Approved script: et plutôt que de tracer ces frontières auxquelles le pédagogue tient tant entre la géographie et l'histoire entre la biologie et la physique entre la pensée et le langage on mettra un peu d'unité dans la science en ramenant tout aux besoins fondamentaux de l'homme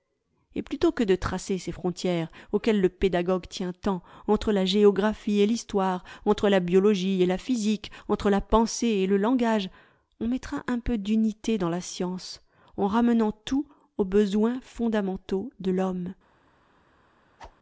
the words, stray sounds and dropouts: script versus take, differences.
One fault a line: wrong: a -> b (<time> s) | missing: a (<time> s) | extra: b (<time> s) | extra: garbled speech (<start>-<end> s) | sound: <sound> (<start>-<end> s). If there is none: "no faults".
sound: whoosh (17.4-17.6 s)